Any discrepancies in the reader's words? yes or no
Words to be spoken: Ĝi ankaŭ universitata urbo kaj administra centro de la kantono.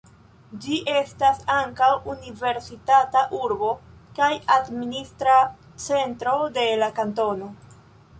yes